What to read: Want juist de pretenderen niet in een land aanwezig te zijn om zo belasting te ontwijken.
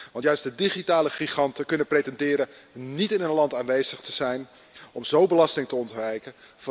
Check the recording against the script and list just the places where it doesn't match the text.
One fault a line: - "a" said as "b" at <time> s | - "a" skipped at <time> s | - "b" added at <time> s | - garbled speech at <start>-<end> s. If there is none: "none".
- "digitale giganten kunnen" added at 0.5 s